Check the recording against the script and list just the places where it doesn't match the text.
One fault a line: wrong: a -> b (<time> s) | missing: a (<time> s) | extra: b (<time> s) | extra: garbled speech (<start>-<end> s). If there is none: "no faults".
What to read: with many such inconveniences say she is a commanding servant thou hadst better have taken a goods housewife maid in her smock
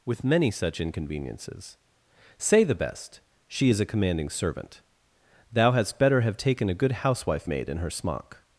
extra: the best (2.6 s)
wrong: goods -> good (6.7 s)